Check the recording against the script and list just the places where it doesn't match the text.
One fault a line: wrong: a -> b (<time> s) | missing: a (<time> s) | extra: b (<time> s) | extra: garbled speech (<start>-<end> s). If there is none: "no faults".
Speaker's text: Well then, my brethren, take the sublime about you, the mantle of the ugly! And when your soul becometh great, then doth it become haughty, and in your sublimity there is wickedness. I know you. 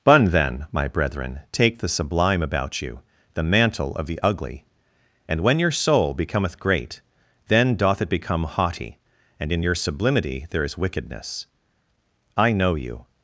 wrong: Well -> Bun (0.0 s)